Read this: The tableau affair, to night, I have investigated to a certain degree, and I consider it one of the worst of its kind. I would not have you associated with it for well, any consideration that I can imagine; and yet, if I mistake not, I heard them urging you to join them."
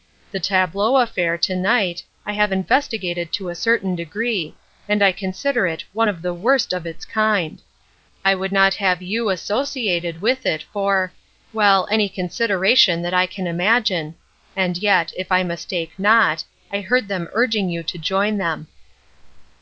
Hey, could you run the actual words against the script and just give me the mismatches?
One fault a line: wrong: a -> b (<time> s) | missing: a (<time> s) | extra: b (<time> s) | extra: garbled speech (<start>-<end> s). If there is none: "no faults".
no faults